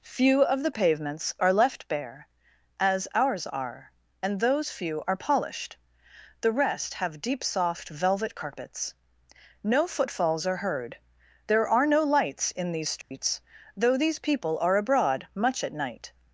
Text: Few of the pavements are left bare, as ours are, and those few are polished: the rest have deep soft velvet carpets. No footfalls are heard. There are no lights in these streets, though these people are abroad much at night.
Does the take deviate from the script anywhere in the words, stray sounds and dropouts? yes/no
yes